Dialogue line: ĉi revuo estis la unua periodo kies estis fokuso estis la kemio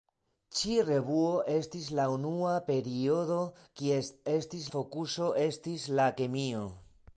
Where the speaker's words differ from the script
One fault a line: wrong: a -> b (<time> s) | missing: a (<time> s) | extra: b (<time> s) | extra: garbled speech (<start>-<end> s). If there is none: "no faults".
no faults